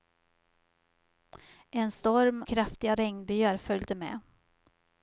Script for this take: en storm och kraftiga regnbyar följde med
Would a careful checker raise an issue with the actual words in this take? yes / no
yes